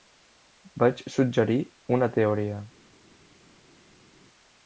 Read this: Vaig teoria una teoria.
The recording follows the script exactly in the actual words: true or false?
false